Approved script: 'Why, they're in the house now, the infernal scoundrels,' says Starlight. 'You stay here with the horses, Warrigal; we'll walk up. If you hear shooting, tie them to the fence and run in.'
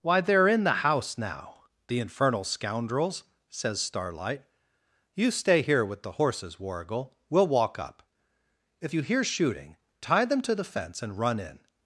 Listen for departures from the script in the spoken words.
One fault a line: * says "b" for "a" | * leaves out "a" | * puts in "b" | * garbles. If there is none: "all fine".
all fine